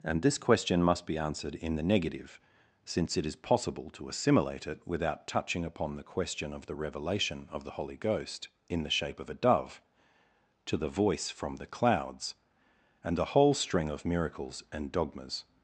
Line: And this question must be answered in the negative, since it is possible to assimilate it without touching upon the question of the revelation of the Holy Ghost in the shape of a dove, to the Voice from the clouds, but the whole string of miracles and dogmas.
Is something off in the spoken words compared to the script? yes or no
yes